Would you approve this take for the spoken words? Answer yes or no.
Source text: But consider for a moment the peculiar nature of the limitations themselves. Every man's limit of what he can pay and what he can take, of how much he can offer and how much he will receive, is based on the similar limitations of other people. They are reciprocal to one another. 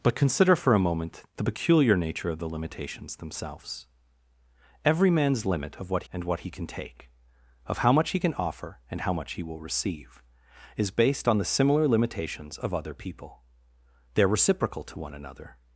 no